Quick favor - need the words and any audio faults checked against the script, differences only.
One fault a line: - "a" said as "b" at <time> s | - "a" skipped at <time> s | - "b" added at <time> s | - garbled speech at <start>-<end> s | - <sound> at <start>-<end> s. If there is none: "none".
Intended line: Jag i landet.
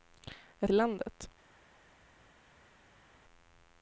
none